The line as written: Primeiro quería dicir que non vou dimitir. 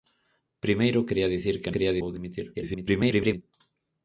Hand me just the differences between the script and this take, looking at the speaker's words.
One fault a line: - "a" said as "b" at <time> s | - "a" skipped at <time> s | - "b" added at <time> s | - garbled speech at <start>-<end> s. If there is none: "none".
- "non" said as "quería" at 1.7 s
- garbled speech at 2.5-3.4 s